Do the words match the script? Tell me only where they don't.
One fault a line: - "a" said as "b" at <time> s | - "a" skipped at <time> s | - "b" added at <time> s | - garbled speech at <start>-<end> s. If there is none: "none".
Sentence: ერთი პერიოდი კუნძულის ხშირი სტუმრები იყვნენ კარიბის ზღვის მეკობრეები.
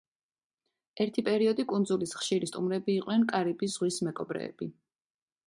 none